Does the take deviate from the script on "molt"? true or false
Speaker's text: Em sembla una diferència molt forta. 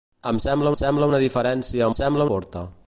true